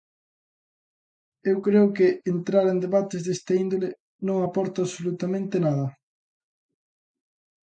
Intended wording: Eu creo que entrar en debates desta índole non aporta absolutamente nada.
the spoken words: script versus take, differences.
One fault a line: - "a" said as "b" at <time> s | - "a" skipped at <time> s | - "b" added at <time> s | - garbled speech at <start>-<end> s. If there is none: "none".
none